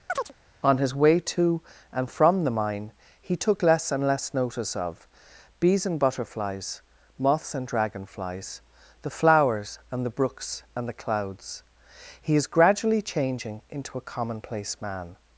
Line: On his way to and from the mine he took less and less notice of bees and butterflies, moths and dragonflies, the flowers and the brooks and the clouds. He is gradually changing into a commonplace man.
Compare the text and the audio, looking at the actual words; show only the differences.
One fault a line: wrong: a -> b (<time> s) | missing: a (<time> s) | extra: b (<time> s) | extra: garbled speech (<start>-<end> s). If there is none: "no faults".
no faults